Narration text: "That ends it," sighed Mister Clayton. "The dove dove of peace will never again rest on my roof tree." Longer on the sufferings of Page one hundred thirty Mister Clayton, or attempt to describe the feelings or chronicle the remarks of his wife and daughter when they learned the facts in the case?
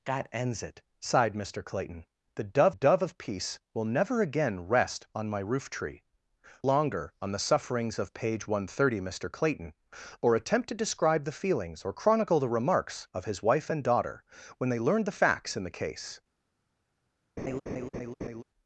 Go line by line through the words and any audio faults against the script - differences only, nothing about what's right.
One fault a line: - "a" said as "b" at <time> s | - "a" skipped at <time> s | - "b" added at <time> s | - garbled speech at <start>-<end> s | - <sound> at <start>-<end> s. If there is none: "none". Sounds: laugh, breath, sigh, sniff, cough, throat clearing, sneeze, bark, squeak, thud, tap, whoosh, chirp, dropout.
- laugh at 17.4-18.4 s